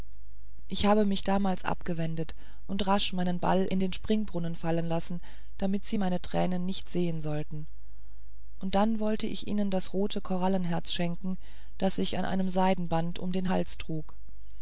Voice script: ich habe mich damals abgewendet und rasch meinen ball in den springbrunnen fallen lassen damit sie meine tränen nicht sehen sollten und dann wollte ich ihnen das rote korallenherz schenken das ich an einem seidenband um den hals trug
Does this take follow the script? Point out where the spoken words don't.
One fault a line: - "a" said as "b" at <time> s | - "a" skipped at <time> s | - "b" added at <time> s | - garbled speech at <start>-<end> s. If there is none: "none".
none